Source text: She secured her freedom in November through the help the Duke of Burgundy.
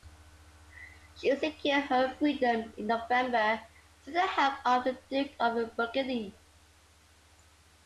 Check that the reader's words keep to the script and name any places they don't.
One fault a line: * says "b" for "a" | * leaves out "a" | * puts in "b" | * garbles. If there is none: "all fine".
* puts in "of"